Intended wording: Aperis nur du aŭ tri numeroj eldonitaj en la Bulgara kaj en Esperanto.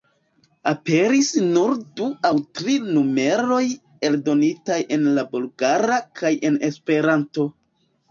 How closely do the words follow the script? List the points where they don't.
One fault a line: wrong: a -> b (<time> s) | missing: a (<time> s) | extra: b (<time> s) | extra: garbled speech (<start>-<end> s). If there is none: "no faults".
no faults